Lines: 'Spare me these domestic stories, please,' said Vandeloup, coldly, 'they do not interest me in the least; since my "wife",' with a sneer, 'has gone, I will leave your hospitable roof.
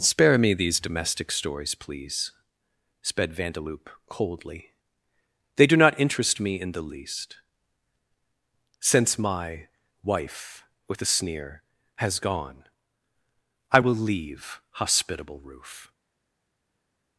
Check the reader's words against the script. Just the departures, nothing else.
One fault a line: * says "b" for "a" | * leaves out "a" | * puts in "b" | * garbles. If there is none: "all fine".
* says "sped" for "said"
* leaves out "your"